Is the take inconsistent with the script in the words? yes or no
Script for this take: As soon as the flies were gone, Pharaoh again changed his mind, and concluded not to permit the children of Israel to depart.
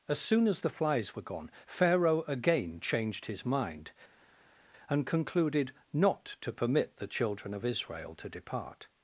no